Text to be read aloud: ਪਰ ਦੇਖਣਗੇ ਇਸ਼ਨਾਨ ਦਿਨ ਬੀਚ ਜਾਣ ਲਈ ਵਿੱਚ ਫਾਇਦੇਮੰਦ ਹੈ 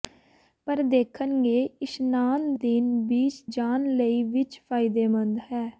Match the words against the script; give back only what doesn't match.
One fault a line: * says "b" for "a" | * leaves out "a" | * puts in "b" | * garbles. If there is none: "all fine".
all fine